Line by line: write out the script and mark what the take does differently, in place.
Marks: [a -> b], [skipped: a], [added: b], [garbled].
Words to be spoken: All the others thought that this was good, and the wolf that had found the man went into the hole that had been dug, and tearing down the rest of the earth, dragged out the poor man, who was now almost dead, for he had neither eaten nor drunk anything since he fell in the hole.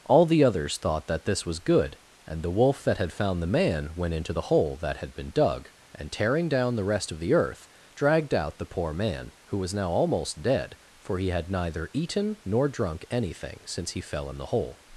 All the others thought that this was good, and the wolf that had found the man went into the hole that had been dug, and tearing down the rest of the earth, dragged out the poor man, who was now almost dead, for he had neither eaten nor drunk anything since he fell in the hole.